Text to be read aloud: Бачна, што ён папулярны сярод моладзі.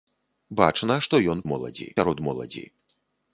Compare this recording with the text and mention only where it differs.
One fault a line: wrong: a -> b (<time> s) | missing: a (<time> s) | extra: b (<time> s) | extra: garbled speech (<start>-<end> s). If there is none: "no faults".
wrong: папулярны -> моладзі (1.5 s)